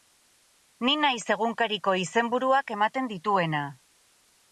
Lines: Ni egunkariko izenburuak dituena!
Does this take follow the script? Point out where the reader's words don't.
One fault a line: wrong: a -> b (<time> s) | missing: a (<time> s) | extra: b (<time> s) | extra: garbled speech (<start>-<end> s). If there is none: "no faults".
extra: naiz (1.0 s)
extra: ematen (2.8 s)